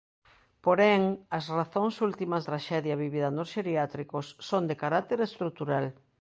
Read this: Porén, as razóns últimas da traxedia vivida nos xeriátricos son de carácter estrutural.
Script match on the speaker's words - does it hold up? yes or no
no